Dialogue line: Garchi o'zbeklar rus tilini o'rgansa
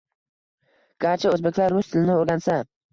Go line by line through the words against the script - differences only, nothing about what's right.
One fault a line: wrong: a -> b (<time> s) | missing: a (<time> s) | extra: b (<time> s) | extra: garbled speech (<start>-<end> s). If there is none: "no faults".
no faults